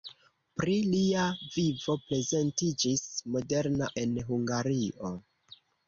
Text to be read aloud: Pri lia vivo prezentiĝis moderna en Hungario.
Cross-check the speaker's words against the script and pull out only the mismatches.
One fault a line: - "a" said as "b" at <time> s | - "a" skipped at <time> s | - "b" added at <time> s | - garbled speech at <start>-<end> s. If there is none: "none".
none